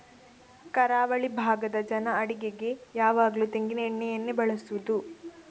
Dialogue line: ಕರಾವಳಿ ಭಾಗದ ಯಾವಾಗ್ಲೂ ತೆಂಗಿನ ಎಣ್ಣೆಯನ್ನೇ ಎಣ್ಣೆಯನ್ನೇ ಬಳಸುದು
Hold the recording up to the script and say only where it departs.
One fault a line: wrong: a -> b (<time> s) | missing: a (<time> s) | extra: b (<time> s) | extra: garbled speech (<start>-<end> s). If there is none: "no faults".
extra: ಜನ ಅಡಿಗೆಗೆ (1.9 s)
missing: ಎಣ್ಣೆಯನ್ನೇ (4.3 s)